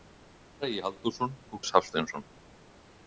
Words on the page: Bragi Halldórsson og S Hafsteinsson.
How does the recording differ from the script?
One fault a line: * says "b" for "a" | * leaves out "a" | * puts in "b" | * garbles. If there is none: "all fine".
all fine